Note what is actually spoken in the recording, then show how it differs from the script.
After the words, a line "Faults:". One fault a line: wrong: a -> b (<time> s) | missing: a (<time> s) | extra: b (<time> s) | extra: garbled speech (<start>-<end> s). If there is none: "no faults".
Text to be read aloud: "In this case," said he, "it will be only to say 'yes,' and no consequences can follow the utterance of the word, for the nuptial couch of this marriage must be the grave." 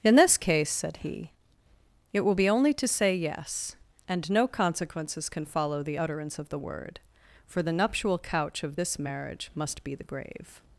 "In this case," said he, "it will be only to say 'yes,' and no consequences can follow the utterance of the word, for the nuptial couch of this marriage must be the grave."
Faults:
no faults